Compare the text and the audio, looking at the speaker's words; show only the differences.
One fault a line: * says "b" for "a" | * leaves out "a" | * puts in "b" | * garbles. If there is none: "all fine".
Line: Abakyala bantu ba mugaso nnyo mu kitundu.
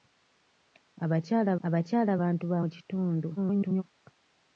* puts in "abakyala"
* leaves out "mugaso nnyo"
* garbles